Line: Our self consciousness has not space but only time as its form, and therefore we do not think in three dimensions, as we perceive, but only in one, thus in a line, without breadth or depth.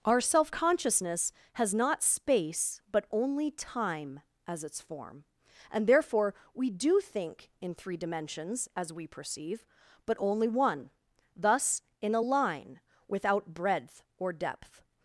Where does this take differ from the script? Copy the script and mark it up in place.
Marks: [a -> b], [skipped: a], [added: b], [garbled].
Our self consciousness has not space but only time as its form, and therefore we do [skipped: not] think in three dimensions, as we perceive, but only [skipped: in] one, thus in a line, without breadth or depth.